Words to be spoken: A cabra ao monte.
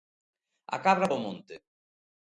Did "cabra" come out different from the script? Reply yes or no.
no